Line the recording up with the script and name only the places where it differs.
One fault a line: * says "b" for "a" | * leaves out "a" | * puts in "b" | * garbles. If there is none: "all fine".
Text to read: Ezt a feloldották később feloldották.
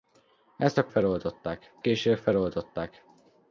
all fine